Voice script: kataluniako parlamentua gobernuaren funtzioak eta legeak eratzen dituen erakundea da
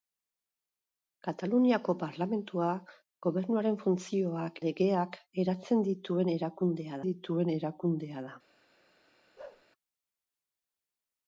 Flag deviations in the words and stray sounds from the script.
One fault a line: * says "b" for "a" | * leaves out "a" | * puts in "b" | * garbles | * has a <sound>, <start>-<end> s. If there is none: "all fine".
* leaves out "eta"
* puts in "dituen erakundea"
* has a bark, 9.4-9.7 s